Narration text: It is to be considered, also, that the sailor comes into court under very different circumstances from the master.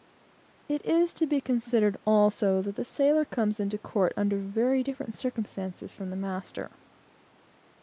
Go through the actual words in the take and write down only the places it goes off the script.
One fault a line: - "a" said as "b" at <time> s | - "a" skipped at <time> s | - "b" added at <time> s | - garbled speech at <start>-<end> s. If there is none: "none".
none